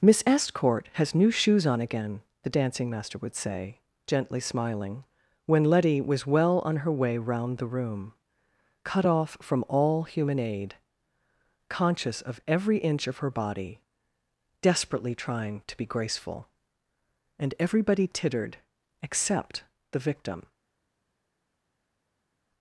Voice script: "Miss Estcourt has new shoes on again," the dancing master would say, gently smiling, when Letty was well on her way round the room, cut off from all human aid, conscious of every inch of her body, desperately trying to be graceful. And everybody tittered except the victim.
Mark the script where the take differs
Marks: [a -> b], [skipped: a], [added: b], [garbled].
"Miss Estcourt has new shoes on again," the dancing master would say, gently smiling, when Letty was well on her way round the room, cut off from all human aid, conscious of every inch of her body, desperately trying to be graceful. And everybody tittered except the victim.